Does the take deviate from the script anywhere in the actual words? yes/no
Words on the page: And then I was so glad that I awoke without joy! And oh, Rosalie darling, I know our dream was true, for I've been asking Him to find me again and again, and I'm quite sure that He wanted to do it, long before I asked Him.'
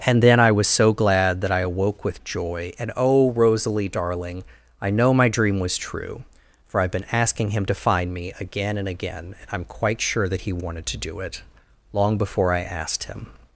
yes